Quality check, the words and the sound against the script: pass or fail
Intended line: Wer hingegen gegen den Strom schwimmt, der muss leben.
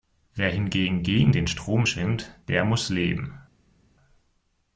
pass